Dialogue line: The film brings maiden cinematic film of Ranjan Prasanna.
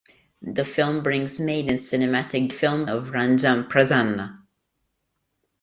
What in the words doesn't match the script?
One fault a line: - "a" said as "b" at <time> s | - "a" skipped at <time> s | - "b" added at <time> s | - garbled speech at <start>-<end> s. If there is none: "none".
none